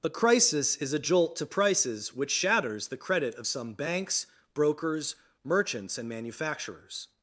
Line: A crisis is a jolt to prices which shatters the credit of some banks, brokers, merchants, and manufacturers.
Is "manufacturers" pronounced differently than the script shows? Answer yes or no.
no